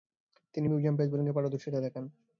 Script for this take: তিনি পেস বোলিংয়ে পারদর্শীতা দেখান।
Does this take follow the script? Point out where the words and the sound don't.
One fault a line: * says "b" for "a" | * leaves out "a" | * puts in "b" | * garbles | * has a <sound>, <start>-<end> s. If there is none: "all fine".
* puts in "মিডিয়াম"